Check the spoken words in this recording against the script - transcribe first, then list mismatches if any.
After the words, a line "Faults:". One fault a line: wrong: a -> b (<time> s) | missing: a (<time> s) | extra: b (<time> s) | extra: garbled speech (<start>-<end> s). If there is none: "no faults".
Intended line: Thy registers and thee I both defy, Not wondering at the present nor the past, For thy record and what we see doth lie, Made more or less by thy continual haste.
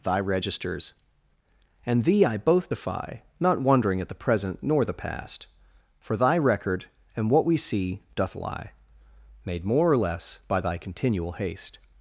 Thy registers and thee I both defy, Not wondering at the present nor the past, For thy record and what we see doth lie, Made more or less by thy continual haste.
Faults:
no faults